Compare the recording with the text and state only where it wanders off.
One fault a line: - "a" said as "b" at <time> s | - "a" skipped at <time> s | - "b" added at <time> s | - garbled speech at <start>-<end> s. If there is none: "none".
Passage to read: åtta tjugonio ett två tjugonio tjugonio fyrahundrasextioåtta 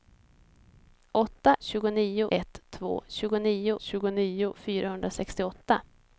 none